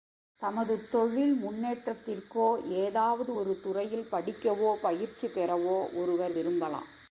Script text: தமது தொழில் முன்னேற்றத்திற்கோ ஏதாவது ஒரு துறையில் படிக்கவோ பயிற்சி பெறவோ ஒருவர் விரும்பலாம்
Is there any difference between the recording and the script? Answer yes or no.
no